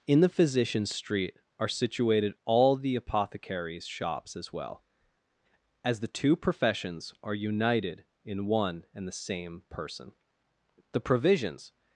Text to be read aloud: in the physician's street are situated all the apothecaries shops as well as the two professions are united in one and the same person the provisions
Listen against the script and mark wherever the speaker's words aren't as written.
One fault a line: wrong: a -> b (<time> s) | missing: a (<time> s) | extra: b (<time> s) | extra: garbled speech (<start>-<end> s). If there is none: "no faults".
no faults